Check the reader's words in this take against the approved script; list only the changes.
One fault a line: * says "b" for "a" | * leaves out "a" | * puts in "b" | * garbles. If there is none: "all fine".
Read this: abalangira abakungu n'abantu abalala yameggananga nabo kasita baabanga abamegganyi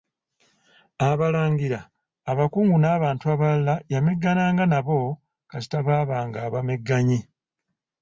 all fine